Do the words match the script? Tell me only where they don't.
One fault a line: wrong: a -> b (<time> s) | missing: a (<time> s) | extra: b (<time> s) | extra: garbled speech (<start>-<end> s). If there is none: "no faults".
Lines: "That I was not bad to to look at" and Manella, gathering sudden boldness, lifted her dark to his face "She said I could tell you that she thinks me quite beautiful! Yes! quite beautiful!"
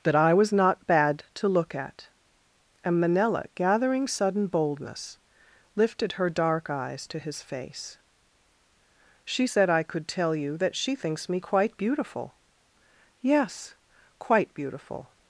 missing: to (1.5 s)
extra: eyes (6.7 s)